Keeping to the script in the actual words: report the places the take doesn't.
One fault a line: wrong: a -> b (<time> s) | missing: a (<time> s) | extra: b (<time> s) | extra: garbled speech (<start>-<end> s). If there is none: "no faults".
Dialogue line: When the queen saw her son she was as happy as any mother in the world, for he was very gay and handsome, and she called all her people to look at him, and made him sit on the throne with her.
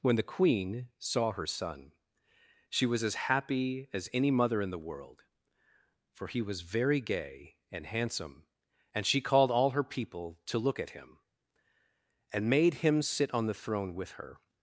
no faults